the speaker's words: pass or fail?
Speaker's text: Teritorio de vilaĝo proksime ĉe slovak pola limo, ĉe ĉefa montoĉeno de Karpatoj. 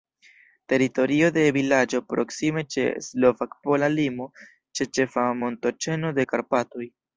pass